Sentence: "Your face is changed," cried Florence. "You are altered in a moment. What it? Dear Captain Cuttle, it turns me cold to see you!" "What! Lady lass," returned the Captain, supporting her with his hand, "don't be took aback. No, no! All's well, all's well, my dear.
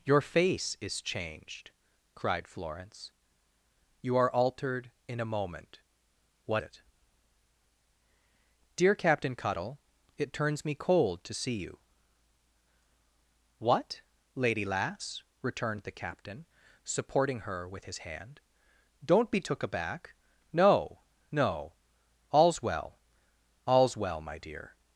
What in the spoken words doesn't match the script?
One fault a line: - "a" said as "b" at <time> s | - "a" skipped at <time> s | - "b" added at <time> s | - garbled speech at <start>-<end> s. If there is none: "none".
none